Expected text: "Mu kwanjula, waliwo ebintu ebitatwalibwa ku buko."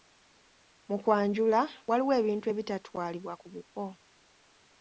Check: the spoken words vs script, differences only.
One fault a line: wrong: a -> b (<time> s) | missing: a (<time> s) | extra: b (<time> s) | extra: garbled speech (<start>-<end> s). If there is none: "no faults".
no faults